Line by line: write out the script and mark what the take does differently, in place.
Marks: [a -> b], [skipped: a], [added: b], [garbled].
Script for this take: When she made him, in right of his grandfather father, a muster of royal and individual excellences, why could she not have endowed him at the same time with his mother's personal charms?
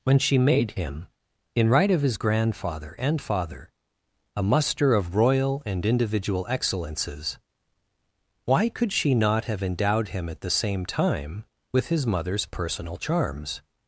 When she made him, in right of his grandfather [added: and] father, a muster of royal and individual excellences, why could she not have endowed him at the same time with his mother's personal charms?